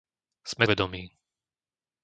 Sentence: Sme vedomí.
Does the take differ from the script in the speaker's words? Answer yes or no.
no